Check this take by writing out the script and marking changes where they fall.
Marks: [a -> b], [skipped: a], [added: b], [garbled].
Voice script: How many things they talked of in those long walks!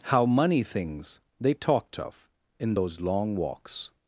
How [many -> money] things they talked of in those long walks!